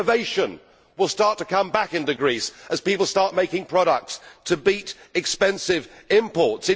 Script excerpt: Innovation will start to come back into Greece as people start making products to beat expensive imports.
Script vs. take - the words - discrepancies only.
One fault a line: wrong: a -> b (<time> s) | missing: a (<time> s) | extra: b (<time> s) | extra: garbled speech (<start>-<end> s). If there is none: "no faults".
no faults